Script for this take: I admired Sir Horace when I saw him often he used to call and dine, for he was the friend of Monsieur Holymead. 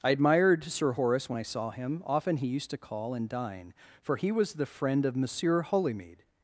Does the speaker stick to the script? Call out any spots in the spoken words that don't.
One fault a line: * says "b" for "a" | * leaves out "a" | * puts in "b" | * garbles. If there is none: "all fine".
all fine